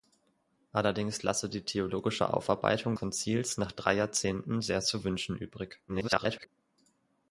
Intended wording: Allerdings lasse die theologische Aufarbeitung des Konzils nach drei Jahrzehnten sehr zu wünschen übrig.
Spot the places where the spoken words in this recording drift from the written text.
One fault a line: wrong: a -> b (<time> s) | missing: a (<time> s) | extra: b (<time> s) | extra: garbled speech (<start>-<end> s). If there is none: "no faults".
missing: des (3.0 s)
extra: garbled speech (5.9-6.5 s)